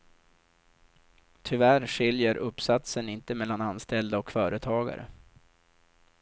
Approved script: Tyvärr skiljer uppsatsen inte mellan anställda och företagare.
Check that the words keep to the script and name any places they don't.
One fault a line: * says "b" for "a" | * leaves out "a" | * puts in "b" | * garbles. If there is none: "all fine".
all fine